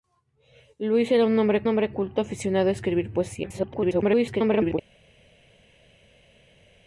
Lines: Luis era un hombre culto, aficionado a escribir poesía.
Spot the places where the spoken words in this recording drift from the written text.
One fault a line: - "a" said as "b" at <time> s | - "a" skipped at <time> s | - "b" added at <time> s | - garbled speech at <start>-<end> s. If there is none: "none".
- "hombre" added at 1.7 s
- garbled speech at 3.4-4.8 s